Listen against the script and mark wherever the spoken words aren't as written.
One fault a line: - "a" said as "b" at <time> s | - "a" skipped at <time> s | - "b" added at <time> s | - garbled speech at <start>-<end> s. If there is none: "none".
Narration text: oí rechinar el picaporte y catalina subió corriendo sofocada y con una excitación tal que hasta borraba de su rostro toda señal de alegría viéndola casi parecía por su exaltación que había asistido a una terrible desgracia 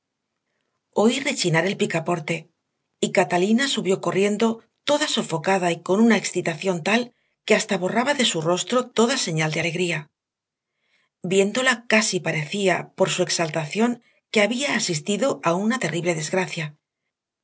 - "toda" added at 4.8 s